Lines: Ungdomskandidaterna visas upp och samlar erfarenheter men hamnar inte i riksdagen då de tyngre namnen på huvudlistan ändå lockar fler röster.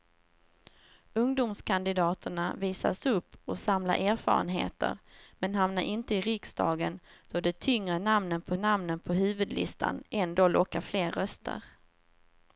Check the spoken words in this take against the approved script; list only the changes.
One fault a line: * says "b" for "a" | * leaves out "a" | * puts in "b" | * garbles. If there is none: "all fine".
* puts in "namnen på"